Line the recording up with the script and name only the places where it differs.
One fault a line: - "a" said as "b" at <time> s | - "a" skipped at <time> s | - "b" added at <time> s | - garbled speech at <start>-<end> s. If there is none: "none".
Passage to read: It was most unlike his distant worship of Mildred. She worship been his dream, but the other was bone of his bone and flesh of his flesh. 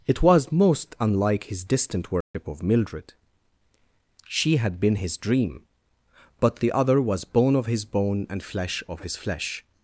- "worship" said as "had" at 4.6 s